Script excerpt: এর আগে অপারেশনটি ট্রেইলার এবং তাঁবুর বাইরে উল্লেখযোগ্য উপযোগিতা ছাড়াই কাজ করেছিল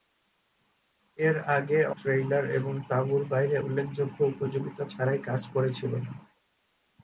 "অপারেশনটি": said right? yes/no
no